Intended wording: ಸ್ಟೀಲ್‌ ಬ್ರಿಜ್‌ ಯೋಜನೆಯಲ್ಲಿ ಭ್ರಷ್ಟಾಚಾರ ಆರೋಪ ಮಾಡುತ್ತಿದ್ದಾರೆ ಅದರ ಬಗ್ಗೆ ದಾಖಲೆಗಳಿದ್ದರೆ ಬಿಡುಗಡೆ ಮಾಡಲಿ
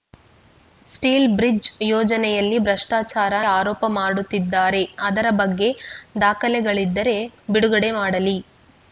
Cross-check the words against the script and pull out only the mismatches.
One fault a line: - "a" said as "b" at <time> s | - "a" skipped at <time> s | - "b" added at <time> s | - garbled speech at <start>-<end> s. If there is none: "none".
none